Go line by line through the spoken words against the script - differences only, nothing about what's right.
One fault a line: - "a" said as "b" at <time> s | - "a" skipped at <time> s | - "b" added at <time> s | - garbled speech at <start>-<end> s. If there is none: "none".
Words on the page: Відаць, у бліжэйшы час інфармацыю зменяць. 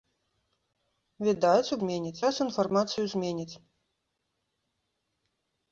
- "бліжэйшы" said as "зменяць" at 1.8 s